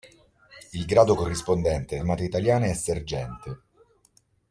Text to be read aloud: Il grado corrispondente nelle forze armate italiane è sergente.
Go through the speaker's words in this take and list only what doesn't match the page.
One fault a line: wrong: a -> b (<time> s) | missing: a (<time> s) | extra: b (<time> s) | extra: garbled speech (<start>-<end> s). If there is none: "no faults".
missing: nelle forze (2.0 s)